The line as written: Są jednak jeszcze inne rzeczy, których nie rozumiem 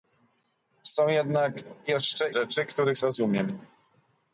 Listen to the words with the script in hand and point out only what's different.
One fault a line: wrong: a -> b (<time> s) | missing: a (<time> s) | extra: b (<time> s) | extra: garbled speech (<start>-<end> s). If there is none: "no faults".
missing: inne (2.3 s)
missing: nie (3.0 s)